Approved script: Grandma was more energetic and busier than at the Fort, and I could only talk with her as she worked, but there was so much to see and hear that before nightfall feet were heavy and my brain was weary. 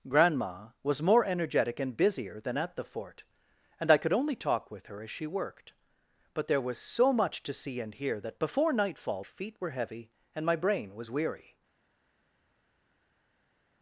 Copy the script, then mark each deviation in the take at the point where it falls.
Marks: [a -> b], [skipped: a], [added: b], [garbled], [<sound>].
Grandma was more energetic and busier than at the Fort, and I could only talk with her as she worked, but there was so much to see and hear that before nightfall feet were heavy and my brain was weary.